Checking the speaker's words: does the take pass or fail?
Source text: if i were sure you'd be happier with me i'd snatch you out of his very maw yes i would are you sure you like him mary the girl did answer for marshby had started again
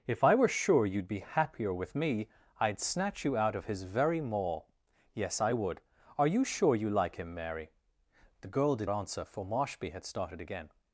pass